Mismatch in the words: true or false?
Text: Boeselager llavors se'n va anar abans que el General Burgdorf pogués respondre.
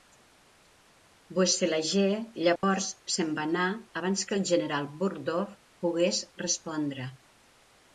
false